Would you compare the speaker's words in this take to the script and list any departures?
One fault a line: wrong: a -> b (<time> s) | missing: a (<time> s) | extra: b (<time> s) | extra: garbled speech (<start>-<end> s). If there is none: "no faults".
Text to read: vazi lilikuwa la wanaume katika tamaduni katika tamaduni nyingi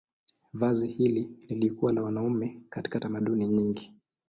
extra: hili (0.9 s)
missing: katika tamaduni (3.5 s)